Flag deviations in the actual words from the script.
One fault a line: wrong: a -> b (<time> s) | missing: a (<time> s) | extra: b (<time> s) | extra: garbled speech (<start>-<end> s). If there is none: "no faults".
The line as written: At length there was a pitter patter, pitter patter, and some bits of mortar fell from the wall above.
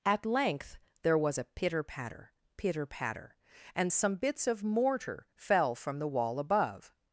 no faults